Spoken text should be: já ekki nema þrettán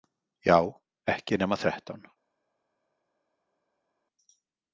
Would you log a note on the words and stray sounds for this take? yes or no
no